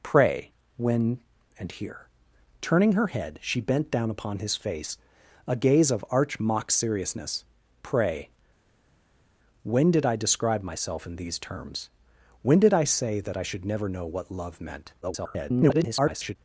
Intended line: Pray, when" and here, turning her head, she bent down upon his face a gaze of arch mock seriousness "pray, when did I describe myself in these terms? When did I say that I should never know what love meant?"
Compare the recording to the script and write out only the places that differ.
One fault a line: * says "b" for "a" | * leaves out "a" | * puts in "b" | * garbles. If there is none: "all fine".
* garbles